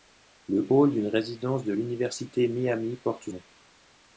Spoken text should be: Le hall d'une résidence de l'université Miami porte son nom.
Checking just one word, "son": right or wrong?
wrong